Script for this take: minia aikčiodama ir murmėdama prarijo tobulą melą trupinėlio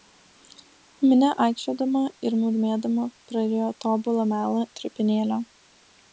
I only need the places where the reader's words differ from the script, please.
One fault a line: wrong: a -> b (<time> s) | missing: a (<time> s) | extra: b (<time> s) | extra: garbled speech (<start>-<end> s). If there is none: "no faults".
no faults